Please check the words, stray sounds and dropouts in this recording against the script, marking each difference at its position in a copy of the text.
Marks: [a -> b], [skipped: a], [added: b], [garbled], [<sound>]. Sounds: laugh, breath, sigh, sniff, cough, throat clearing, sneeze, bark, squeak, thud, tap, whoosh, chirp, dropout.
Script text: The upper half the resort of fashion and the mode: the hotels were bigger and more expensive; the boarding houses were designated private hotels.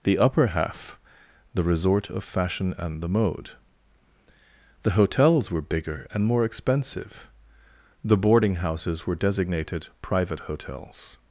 The upper half the resort of fashion and the mode: the hotels were bigger and more expensive; the boarding houses were designated private hotels.